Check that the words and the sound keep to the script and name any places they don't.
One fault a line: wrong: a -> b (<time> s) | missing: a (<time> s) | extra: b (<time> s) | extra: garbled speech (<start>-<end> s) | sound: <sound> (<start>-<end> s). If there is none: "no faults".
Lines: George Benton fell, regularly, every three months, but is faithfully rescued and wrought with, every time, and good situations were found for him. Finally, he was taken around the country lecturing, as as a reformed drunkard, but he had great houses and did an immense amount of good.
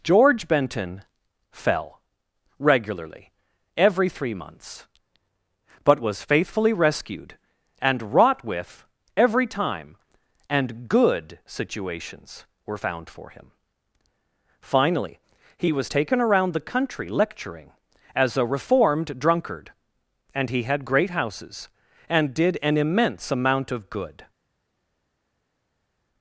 wrong: is -> was (6.0 s)
missing: as (18.4 s)
wrong: but -> and (20.3 s)